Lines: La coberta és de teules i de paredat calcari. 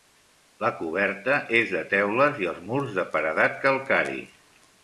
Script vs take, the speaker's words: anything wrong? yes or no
yes